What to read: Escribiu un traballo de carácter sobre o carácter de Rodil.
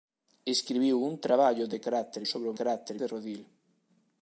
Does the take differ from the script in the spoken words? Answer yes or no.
no